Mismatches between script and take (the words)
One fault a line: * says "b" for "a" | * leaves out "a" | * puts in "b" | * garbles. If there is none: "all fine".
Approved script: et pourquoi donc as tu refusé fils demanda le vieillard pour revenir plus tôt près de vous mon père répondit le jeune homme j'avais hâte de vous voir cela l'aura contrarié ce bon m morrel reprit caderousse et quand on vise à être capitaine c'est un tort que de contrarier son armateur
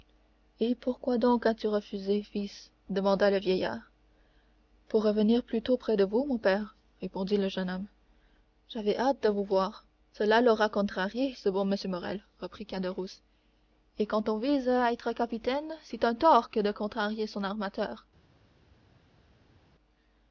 all fine